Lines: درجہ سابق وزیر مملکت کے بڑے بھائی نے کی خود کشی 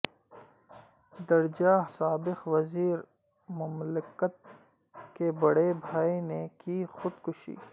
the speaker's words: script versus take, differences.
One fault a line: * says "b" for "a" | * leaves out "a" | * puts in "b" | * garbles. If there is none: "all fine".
all fine